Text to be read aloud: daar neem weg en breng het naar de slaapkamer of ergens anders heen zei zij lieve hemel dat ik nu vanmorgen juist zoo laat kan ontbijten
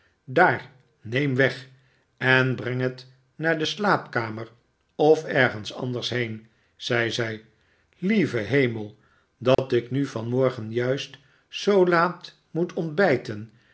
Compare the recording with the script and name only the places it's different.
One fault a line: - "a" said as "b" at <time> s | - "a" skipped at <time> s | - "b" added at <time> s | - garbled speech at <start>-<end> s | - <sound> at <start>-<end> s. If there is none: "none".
- dropout at 9.5-9.6 s
- "kan" said as "moet" at 12.5 s